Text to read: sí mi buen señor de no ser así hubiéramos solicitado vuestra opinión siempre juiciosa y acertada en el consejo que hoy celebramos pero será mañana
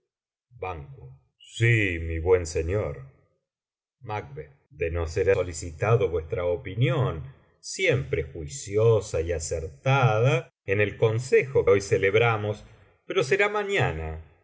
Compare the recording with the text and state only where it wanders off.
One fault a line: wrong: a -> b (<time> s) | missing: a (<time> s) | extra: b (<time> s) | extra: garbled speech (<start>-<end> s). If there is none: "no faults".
missing: así hubiéramos (5.3 s)
missing: que (11.7 s)